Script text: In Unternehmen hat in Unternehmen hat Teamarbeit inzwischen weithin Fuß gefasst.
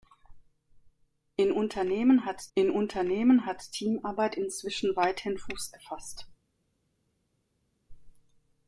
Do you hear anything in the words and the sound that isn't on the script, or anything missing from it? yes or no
no